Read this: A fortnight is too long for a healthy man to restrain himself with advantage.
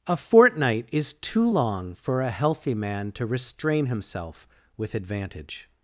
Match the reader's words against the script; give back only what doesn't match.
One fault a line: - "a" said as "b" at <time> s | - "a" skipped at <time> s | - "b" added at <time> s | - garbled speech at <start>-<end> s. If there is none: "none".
none